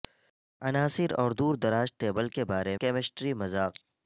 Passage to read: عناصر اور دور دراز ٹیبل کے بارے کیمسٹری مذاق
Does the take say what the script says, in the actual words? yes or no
yes